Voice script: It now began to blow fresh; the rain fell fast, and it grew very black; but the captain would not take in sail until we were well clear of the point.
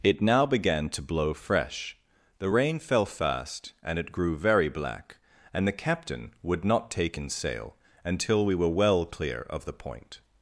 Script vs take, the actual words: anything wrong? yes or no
yes